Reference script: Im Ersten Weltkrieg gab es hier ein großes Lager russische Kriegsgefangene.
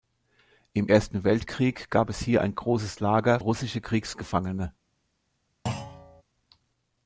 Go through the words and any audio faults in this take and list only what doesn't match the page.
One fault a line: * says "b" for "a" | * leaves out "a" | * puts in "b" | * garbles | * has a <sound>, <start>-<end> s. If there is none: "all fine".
* has a thud, 5.7-6.2 s